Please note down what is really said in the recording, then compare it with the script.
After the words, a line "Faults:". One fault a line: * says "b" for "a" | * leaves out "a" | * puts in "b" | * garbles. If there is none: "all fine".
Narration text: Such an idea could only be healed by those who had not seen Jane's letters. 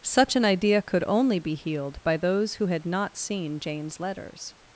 Such an idea could only be healed by those who had not seen Jane's letters.
Faults:
all fine